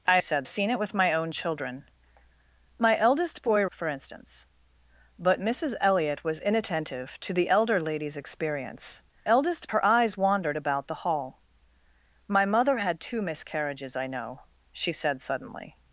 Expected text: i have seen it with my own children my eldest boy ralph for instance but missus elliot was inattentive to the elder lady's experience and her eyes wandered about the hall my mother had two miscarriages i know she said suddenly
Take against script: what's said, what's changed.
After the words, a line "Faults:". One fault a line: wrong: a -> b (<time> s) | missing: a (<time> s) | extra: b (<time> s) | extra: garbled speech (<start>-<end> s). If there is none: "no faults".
i said seen it with my own children my eldest boy for instance but missus elliot was inattentive to the elder lady's experience eldest her eyes wandered about the hall my mother had two miscarriages i know she said suddenly
Faults:
wrong: have -> said (0.2 s)
missing: ralph (3.6 s)
wrong: and -> eldest (9.2 s)